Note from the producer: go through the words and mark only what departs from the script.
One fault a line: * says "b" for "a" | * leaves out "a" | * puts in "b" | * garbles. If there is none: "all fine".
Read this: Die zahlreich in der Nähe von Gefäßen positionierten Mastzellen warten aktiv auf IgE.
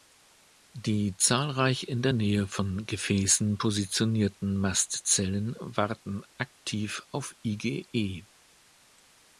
all fine